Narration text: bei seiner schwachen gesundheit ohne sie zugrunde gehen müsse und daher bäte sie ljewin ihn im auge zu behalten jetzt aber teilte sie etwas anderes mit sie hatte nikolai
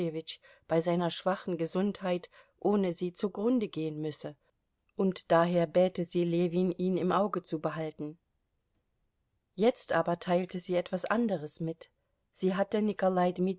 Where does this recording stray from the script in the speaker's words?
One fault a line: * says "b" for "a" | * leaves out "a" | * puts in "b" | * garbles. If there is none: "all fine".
all fine